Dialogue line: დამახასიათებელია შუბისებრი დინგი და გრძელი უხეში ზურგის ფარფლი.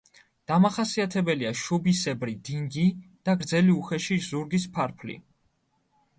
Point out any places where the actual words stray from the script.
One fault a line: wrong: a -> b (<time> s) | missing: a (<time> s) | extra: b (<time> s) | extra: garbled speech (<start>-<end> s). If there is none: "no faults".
no faults